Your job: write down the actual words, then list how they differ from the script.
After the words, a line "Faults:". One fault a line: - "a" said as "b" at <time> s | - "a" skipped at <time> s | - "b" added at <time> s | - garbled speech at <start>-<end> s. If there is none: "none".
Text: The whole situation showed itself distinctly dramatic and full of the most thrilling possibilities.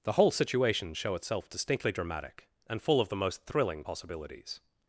The whole situation show itself distinctly dramatic and full of the most thrilling possibilities.
Faults:
- "showed" said as "show" at 0.9 s